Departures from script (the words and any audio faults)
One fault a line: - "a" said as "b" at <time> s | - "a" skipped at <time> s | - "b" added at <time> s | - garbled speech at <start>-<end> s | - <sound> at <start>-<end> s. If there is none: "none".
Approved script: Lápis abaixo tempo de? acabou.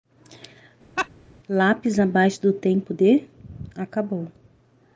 - laugh at 1.0-1.1 s
- "do" added at 2.4 s